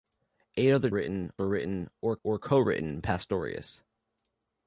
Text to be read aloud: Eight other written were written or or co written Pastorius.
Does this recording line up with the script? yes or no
yes